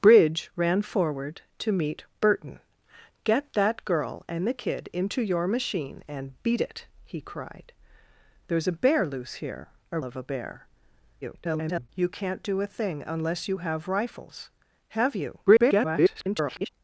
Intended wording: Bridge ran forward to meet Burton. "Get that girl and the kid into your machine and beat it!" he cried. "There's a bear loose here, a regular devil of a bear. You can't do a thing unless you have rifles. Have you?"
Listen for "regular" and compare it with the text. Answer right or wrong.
wrong